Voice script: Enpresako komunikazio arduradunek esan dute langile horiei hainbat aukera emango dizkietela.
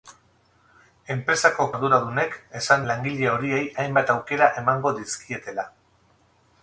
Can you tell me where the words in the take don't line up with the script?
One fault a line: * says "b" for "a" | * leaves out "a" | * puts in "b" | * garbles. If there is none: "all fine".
* leaves out "komunikazio"
* leaves out "dute"